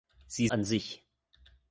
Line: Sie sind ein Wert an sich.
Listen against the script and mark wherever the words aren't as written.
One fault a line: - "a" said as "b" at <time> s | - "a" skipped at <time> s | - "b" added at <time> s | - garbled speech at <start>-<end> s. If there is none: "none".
- "sind ein Wert" skipped at 0.5 s